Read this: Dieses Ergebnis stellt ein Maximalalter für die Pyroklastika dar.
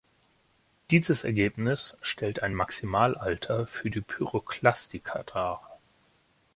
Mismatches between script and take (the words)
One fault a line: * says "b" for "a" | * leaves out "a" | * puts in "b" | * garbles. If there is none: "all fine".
all fine